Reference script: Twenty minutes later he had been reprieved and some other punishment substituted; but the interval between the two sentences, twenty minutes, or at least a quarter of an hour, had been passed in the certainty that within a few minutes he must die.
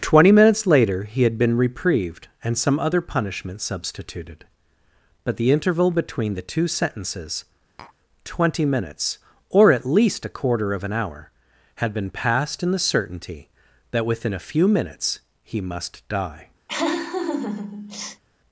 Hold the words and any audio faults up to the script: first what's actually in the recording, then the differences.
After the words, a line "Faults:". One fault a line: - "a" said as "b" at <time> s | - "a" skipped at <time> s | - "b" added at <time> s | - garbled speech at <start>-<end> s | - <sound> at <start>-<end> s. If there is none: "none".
Twenty minutes later he had been reprieved and some other punishment substituted; but the interval between the two sentences, twenty minutes, or at least a quarter of an hour, had been passed in the certainty that within a few minutes he must die.
Faults:
- tap at 7.8-7.9 s
- laugh at 16.7-18.2 s